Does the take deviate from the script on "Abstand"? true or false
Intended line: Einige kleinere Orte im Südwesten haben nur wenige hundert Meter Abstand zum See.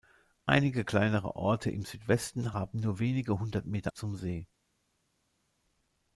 true